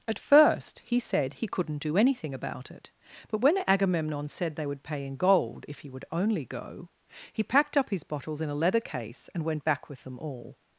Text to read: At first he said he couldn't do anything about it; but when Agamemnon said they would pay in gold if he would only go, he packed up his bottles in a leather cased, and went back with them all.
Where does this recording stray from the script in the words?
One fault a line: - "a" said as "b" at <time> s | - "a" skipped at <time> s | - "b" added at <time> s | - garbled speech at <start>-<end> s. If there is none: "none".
- "cased" said as "case" at 8.8 s